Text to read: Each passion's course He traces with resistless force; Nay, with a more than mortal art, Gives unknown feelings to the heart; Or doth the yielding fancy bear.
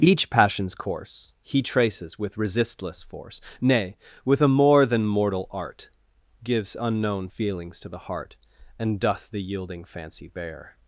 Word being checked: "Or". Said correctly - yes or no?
no